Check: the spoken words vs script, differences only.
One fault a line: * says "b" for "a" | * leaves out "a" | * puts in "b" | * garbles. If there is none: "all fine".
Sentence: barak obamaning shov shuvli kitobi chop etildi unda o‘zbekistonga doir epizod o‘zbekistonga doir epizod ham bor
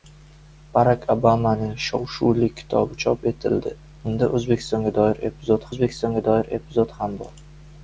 all fine